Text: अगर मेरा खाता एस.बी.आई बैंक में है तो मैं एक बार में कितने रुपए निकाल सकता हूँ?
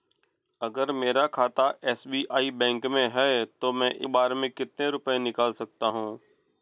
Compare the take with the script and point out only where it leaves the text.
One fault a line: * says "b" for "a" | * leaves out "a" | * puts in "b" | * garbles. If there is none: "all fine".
* leaves out "एक"